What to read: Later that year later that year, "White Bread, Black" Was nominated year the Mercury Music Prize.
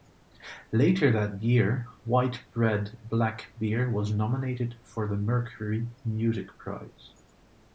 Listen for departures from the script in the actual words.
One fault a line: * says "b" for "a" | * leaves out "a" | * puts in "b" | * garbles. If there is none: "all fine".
* leaves out "later that year"
* puts in "Beer"
* says "for" for "year"